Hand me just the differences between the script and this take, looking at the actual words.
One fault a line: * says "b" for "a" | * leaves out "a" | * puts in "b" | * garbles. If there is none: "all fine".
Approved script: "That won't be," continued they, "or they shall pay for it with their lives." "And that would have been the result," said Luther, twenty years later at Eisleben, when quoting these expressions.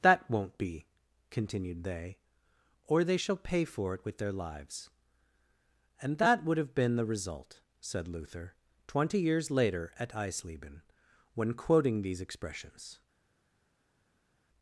all fine